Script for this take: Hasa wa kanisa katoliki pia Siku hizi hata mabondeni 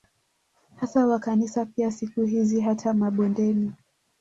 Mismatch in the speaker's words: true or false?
true